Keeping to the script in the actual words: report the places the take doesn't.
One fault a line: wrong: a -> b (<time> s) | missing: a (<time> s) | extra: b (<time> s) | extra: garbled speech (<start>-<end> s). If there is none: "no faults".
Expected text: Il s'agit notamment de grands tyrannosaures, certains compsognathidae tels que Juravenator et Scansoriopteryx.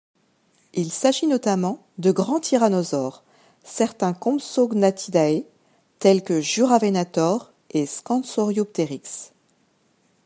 no faults